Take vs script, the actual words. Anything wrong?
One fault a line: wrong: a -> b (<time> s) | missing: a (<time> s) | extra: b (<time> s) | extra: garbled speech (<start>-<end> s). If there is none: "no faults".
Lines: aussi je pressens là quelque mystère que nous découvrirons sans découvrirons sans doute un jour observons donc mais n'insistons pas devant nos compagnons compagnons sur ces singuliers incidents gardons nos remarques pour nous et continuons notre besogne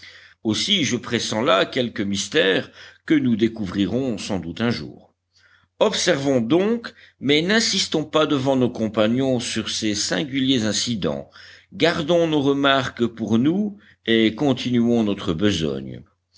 missing: découvrirons sans (4.4 s)
missing: compagnons (9.4 s)